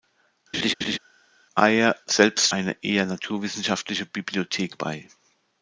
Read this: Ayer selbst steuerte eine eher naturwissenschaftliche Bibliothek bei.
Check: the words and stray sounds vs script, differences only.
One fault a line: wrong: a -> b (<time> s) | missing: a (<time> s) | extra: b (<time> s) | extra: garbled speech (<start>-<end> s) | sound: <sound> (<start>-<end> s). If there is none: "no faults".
sound: laugh (0.5-1.0 s)
missing: steuerte (2.5 s)